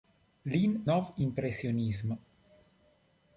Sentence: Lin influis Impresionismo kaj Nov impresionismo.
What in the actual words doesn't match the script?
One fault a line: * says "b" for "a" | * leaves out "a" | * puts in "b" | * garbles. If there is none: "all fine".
* leaves out "influis Impresionismo kaj"